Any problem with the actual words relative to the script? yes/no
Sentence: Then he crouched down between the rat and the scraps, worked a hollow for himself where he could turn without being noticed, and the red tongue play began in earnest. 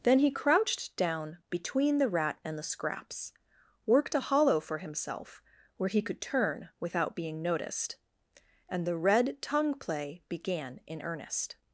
no